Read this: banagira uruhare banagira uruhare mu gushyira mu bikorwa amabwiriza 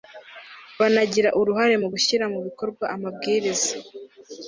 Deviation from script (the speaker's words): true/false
true